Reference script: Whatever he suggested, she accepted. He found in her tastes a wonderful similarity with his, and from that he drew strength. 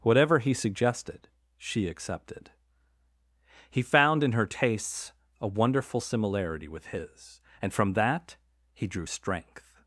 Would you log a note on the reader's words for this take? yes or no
no